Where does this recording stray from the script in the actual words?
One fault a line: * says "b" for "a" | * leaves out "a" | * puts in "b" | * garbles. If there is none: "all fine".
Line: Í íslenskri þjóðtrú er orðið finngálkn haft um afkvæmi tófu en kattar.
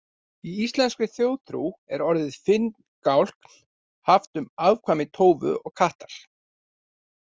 * says "og" for "en"